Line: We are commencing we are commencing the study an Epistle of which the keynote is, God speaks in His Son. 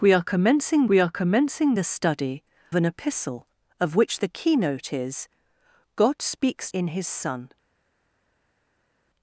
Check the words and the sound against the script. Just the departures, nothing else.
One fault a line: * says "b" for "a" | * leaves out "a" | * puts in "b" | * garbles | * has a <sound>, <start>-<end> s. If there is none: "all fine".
all fine